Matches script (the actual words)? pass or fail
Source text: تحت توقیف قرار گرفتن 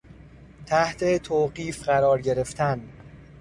pass